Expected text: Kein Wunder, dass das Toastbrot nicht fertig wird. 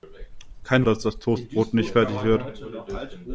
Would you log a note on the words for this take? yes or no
yes